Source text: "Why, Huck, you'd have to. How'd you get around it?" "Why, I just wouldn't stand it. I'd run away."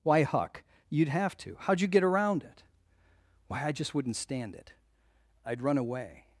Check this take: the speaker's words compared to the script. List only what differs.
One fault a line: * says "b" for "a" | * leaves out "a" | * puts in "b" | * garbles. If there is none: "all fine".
all fine